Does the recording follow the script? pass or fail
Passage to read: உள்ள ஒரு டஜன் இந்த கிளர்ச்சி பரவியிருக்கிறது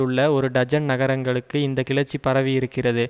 fail